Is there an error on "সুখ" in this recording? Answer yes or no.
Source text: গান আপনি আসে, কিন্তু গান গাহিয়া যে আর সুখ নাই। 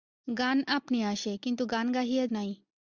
yes